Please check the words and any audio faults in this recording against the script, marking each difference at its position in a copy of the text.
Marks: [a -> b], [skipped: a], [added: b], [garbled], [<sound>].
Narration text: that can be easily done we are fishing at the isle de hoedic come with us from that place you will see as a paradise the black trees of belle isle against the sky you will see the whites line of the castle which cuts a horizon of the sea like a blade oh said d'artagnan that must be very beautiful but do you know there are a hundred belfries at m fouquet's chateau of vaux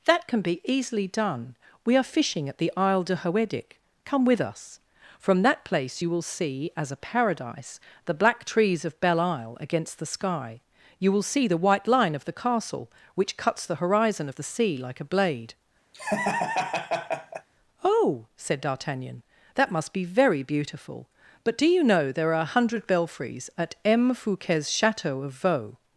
that can be easily done we are fishing at the isle de hoedic come with us from that place you will see as a paradise the black trees of belle isle against the sky you will see the [whites -> white] line of the castle which cuts [a -> the] horizon of the sea like a blade [laugh] oh said d'artagnan that must be very beautiful but do you know there are a hundred belfries at m fouquet's chateau of vaux